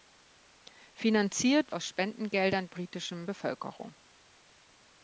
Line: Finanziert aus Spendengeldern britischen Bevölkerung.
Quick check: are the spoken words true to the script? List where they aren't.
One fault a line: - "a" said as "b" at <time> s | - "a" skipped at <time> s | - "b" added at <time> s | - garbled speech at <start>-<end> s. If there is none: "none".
none